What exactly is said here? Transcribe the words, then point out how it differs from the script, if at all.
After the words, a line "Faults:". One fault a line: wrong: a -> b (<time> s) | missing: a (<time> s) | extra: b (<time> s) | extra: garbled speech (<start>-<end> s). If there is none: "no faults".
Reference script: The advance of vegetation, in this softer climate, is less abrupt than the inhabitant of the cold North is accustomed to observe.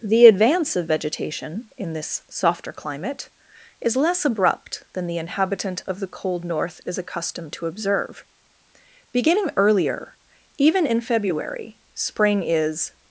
The advance of vegetation, in this softer climate, is less abrupt than the inhabitant of the cold North is accustomed to observe. Beginning earlier, even in February, Spring is
Faults:
extra: Beginning earlier even in February Spring is (9.1 s)